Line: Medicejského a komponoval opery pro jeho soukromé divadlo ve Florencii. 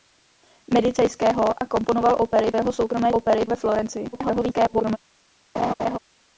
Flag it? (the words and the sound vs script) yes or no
yes